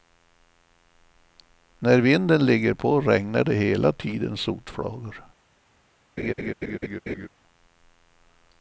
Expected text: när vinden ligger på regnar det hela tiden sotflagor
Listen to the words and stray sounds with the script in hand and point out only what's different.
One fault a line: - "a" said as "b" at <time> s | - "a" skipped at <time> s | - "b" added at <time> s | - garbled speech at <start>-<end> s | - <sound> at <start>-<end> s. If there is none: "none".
- laugh at 6.2-7.3 s